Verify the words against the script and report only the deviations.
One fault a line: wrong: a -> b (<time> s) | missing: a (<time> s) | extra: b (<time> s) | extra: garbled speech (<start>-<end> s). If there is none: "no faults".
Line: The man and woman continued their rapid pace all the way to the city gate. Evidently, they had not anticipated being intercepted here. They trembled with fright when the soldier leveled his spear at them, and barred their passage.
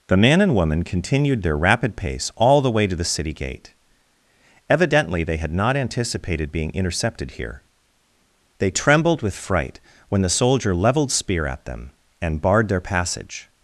missing: his (11.1 s)